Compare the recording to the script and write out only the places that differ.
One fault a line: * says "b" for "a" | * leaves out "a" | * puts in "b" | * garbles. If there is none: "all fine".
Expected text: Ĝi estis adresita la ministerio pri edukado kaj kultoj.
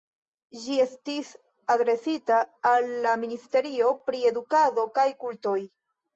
* puts in "al"